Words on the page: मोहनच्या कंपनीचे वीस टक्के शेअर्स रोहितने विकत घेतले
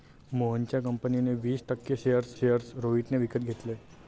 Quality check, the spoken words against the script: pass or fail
fail